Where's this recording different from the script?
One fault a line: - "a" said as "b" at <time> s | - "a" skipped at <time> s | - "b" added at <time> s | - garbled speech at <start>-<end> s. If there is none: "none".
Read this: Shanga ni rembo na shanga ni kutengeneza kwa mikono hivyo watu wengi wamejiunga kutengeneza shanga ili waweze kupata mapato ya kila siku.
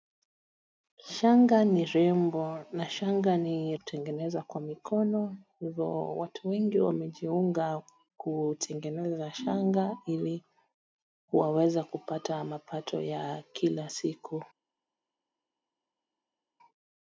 none